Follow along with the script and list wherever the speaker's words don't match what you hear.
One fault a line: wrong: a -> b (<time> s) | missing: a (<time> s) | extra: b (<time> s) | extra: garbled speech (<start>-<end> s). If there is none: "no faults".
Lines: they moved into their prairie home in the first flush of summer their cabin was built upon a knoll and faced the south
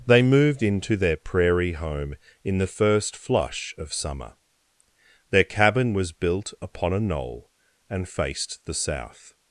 no faults